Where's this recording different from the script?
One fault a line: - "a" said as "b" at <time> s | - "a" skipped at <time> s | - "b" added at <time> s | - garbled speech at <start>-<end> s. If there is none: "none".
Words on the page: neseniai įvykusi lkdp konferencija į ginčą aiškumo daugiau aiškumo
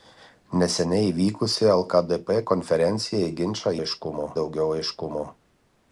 none